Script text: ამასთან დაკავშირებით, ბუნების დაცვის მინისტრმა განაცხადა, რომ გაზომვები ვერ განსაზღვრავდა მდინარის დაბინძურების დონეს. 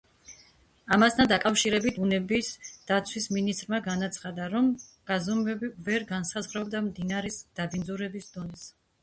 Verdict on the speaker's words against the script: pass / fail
pass